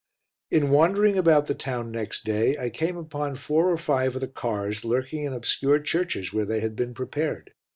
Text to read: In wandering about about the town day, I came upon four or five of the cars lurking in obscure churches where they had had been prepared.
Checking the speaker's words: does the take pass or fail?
fail